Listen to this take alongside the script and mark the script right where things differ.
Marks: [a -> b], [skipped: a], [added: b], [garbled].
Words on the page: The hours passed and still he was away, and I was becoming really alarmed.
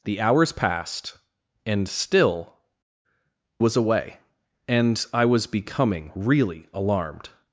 The hours passed and still [skipped: he] was away, and I was becoming really alarmed.